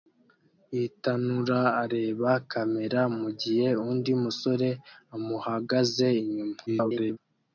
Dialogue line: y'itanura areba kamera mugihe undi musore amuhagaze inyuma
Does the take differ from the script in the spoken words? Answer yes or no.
yes